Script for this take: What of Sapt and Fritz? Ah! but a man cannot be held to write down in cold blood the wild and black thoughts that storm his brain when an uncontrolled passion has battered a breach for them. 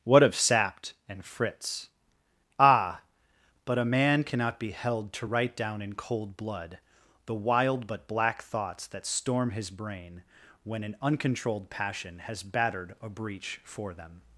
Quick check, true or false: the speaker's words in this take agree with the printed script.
false